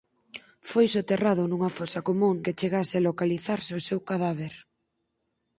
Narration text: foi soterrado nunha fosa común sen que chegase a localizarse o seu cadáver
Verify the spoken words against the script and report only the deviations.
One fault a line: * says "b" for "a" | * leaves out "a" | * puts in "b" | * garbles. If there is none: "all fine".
* leaves out "sen"